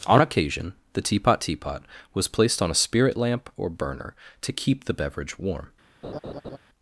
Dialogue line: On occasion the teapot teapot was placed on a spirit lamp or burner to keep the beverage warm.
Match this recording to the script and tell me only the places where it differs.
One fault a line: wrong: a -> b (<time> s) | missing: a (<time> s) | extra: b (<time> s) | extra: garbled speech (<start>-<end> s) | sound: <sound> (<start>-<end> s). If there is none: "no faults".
sound: laugh (6.0-6.6 s)